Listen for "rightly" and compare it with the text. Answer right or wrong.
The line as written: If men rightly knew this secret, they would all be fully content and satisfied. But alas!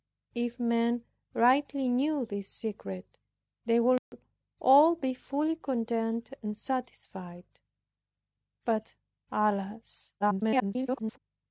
right